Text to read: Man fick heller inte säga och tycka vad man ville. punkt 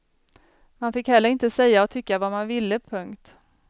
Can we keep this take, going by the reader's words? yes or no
yes